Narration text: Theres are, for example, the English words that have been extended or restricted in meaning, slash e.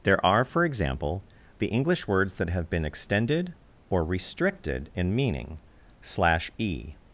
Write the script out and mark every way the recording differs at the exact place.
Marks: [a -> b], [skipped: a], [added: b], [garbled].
[Theres -> There] are, for example, the English words that have been extended or restricted in meaning, slash e.